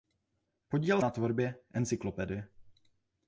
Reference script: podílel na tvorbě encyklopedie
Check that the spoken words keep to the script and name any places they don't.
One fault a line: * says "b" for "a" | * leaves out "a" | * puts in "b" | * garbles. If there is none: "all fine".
all fine